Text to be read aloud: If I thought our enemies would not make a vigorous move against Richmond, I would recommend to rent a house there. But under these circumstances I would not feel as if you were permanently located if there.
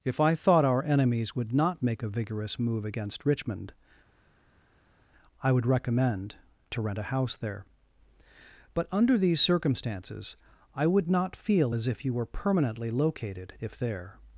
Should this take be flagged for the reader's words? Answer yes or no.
no